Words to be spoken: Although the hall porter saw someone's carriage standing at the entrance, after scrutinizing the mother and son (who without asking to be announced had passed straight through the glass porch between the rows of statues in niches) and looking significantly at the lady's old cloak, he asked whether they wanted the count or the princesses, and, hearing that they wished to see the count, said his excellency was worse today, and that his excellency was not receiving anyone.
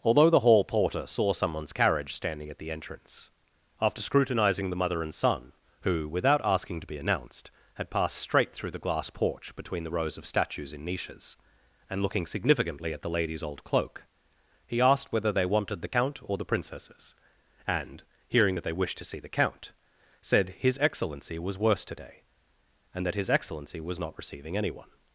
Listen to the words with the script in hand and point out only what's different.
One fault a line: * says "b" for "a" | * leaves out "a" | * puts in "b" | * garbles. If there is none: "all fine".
all fine